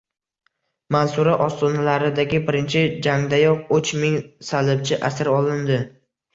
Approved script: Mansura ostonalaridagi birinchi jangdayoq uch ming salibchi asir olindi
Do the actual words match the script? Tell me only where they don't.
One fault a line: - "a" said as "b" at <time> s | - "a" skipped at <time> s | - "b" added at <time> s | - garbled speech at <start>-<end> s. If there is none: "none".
none